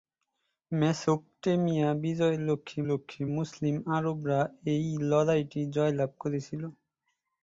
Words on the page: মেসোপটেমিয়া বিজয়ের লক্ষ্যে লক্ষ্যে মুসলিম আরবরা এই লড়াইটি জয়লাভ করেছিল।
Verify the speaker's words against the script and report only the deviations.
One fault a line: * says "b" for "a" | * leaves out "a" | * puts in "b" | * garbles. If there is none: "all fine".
all fine